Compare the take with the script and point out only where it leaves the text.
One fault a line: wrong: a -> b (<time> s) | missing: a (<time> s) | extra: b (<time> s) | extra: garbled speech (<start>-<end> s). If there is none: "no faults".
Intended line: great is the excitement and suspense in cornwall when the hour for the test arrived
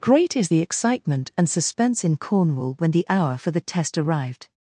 no faults